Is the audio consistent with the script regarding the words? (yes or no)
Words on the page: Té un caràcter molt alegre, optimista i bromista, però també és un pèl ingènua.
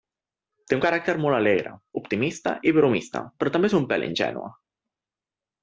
yes